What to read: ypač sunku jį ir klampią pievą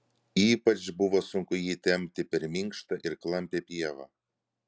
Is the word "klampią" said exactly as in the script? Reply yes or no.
yes